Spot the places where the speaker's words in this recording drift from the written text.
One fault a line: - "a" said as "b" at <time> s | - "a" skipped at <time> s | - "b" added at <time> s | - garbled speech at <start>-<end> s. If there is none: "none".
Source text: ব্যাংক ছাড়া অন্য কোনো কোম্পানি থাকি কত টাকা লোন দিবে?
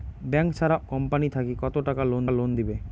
- "অন্য কোনো" skipped at 0.8 s
- "লোন" added at 2.3 s